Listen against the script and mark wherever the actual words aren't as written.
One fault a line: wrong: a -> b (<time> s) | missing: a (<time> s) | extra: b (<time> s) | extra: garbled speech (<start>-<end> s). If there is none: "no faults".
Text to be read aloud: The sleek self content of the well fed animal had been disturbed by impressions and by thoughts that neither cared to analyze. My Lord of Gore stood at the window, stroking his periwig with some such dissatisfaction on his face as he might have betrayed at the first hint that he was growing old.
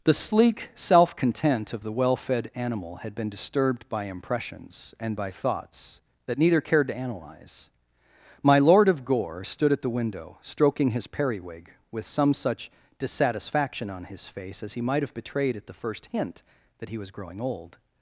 no faults